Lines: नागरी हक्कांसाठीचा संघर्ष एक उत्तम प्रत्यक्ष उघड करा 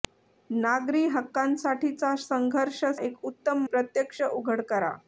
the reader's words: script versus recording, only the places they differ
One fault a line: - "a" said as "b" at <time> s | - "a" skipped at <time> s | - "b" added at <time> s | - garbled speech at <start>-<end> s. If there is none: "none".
none